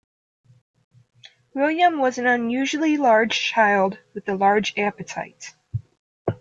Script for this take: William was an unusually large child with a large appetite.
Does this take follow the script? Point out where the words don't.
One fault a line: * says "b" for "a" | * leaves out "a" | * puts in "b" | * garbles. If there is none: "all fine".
all fine